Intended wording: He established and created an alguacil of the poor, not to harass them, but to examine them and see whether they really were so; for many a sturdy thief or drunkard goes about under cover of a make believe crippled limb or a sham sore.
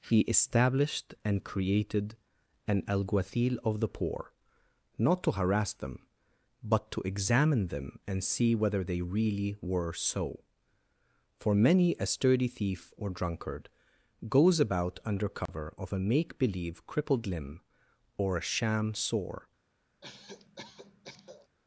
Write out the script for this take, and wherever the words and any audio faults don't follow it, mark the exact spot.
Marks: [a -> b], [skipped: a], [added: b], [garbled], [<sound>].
He established and created an alguacil of the poor, not to harass them, but to examine them and see whether they really were so; for many a sturdy thief or drunkard goes about under cover [dropout] of a make believe crippled limb or a sham sore. [cough]